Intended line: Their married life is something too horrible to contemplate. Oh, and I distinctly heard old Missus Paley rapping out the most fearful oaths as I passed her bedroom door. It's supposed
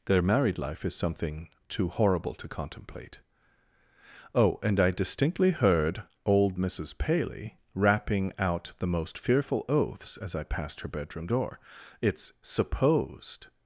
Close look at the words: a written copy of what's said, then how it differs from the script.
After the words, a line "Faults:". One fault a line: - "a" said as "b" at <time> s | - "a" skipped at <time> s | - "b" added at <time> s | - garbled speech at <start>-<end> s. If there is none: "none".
Their married life is something too horrible to contemplate. Oh, and I distinctly heard old Missus Paley rapping out the most fearful oaths as I passed her bedroom door. It's supposed
Faults:
none